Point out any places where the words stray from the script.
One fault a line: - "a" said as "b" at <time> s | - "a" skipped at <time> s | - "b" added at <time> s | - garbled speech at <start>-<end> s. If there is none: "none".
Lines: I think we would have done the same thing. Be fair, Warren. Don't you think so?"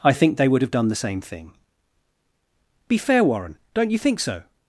- "we" said as "they" at 0.4 s